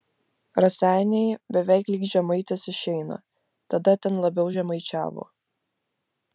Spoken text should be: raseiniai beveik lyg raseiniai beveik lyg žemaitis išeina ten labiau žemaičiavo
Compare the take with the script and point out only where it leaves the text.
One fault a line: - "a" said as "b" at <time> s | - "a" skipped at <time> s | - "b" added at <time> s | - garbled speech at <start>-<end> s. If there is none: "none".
- "raseiniai beveik lyg" skipped at 2.0 s
- "tada" added at 3.7 s